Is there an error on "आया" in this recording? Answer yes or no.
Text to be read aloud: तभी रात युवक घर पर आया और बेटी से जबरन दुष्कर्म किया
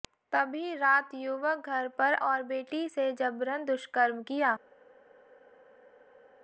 yes